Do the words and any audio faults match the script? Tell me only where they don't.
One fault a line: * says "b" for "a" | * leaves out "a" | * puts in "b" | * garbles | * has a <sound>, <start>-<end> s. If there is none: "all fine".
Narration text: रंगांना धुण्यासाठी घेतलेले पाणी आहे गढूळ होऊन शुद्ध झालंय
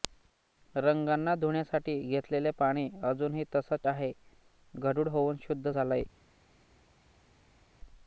* puts in "अजूनही तसंच"